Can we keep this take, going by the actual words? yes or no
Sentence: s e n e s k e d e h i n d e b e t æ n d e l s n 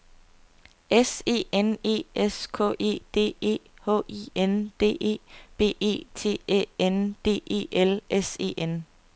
no